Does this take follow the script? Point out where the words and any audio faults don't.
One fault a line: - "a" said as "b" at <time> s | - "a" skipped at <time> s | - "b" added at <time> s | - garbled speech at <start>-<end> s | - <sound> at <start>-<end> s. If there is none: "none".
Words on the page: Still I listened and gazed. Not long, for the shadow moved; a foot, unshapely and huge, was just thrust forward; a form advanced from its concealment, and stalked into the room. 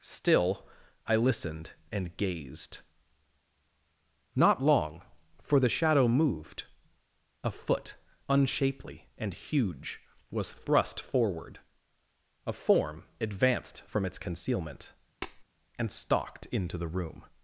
- "just" skipped at 10.5 s
- tap at 15.2-15.4 s